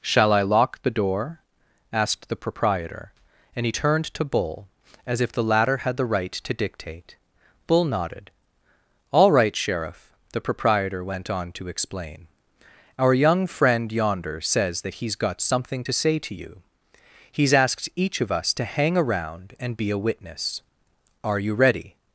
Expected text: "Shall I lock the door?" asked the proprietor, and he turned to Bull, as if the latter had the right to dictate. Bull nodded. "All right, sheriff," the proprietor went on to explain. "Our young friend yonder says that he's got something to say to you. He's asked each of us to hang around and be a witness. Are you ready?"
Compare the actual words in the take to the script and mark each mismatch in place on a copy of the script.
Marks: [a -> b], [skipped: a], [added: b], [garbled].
"Shall I lock the door?" asked the proprietor, and he turned to Bull, as if the latter had the right to dictate. Bull nodded. "All right, sheriff," the proprietor went on to explain. "Our young friend yonder says that he's got something to say to you. He's asked each of us to hang around and be a witness. Are you ready?"